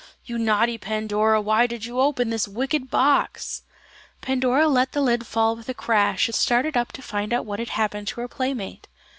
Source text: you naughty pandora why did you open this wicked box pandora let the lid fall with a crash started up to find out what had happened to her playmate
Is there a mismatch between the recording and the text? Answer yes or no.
no